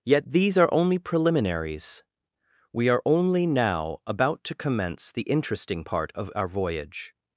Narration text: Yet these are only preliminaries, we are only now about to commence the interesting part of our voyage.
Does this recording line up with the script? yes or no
yes